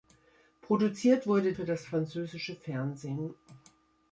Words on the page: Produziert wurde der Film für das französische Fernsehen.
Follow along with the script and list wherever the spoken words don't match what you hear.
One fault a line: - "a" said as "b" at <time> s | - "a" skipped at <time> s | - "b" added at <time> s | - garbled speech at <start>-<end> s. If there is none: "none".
- "der Film" skipped at 1.5 s